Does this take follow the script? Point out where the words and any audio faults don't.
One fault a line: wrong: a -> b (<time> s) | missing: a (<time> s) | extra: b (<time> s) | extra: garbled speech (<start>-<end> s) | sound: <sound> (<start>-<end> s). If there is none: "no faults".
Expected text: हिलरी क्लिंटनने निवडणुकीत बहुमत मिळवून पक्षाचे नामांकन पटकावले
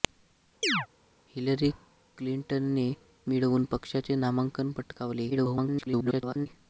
sound: chirp (0.6-0.9 s)
missing: निवडणुकीत बहुमत (2.9 s)
extra: garbled speech (5.3-6.5 s)